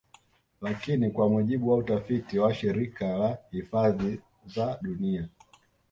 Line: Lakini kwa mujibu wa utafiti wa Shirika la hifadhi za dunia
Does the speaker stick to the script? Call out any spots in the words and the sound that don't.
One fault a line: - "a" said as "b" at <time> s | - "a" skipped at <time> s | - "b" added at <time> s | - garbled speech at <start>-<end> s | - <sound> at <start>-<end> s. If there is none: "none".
none